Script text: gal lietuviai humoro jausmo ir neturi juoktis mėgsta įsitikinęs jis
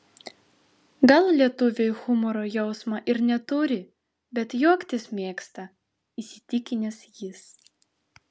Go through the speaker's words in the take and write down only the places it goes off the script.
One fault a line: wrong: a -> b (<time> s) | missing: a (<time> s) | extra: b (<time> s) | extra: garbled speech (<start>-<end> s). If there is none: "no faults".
extra: bet (4.4 s)